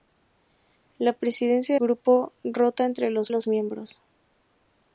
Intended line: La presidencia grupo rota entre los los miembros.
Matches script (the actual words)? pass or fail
pass